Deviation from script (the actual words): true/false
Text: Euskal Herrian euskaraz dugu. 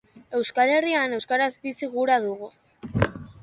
true